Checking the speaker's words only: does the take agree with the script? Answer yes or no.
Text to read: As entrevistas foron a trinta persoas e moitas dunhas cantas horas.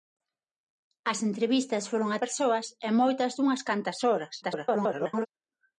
no